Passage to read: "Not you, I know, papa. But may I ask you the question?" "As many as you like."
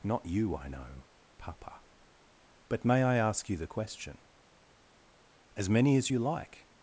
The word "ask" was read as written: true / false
true